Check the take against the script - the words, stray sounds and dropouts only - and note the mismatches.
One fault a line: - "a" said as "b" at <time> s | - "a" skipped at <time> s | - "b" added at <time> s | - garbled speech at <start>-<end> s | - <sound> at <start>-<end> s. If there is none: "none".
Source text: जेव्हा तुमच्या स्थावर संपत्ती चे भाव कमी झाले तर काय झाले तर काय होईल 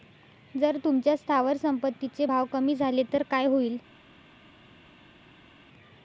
- "जेव्हा" said as "जर" at 0.6 s
- "झाले तर काय" skipped at 3.5 s